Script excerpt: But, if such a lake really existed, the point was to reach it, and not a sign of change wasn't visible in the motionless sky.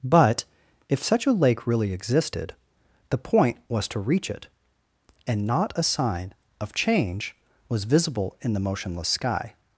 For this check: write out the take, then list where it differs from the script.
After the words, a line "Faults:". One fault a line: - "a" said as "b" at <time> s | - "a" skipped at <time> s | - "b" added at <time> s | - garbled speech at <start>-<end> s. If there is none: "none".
But, if such a lake really existed, the point was to reach it, and not a sign of change was visible in the motionless sky.
Faults:
- "wasn't" said as "was" at 7.7 s